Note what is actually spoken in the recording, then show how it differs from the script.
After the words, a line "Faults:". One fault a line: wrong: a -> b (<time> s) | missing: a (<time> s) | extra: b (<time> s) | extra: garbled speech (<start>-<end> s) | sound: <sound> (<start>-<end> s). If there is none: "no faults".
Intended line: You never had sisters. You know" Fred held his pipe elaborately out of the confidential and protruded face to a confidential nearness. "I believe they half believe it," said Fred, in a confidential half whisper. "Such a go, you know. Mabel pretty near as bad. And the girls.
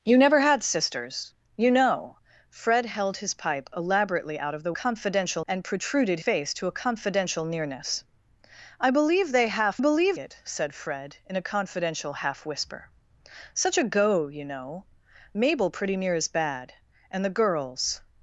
You never had sisters. You know" Fred held his pipe elaborately out of the confidential and protruded face to a confidential nearness. "I believe they half believe it," said Fred, in a confidential half whisper. "Such a go, you know. Mabel pretty near as bad. And the girls.
Faults:
no faults